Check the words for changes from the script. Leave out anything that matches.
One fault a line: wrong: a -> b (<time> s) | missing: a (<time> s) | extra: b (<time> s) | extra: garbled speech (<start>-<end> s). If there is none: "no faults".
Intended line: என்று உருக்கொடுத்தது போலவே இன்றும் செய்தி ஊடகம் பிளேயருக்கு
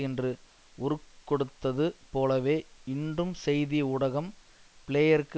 no faults